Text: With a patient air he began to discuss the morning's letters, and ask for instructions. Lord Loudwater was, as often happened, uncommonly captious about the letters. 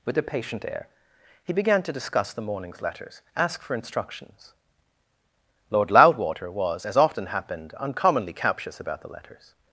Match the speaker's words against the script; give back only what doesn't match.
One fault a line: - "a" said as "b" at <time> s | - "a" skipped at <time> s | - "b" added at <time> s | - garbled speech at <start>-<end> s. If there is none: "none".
- "and" skipped at 3.2 s